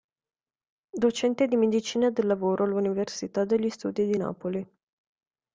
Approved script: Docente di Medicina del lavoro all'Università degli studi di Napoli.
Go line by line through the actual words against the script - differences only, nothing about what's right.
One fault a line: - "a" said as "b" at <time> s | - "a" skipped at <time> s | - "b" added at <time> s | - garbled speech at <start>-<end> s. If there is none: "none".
none